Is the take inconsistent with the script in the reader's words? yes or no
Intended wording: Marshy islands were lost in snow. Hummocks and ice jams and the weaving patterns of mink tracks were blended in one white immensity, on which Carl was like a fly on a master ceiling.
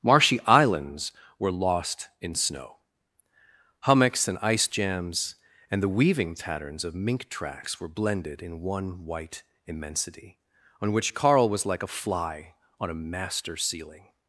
no